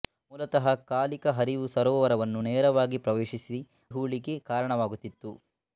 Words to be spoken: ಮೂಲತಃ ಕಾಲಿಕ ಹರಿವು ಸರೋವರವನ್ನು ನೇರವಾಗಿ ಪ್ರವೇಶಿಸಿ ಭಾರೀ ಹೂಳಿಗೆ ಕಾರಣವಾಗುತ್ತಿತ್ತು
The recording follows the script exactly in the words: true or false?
false